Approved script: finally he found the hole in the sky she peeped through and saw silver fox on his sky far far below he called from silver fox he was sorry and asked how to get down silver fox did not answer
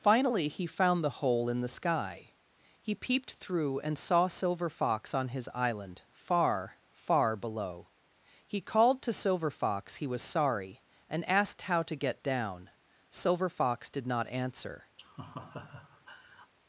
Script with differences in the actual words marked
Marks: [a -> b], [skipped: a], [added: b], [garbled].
finally he found the hole in the sky [she -> he] peeped through and saw silver fox on his [sky -> island] far far below he called [from -> to] silver fox he was sorry and asked how to get down silver fox did not answer